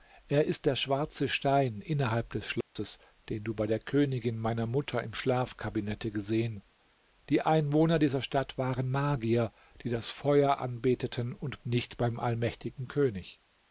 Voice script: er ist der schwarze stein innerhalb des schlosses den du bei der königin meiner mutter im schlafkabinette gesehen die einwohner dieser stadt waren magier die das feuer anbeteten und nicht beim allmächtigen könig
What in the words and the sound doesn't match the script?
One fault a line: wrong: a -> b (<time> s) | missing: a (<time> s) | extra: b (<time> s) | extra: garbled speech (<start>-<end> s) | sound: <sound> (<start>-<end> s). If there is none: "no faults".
sound: dropout (2.6-2.8 s)